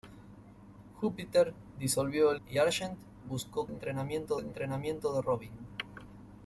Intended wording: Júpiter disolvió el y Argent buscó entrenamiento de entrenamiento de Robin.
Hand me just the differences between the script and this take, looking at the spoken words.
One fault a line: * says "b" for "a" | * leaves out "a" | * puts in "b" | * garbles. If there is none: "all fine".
all fine